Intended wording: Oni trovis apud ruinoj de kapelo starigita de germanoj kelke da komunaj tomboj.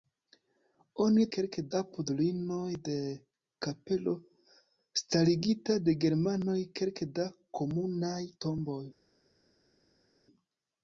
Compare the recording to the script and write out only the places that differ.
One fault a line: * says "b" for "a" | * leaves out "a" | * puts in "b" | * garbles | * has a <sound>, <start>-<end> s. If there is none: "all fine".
* says "kelke" for "trovis"